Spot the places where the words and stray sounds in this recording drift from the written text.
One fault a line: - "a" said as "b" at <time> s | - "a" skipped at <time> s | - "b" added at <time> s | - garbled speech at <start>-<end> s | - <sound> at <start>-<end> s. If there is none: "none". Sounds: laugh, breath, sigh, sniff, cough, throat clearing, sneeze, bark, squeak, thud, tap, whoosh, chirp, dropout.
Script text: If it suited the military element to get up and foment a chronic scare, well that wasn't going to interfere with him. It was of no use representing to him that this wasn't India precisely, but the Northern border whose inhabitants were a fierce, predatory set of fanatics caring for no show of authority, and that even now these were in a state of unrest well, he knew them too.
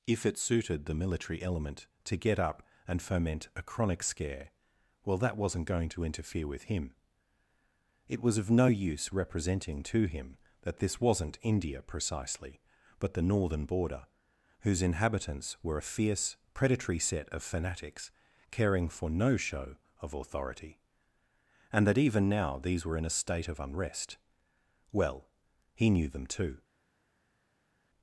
none